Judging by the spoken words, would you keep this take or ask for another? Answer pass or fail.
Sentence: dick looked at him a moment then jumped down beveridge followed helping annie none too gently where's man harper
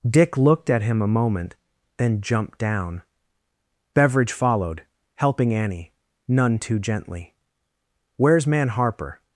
pass